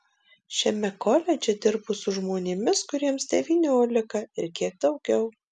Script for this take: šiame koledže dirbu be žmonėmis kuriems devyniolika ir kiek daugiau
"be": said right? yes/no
no